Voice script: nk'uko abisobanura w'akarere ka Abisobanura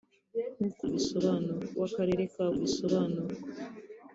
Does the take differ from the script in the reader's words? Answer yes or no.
no